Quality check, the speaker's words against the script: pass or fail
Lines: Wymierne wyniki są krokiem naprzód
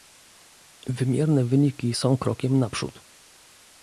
pass